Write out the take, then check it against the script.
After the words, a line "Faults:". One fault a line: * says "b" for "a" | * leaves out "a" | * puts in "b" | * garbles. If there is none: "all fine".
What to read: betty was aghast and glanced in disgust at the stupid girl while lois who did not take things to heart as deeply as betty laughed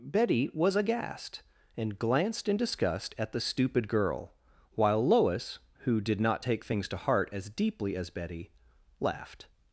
betty was aghast and glanced in disgust at the stupid girl while lois who did not take things to heart as deeply as betty laughed
Faults:
all fine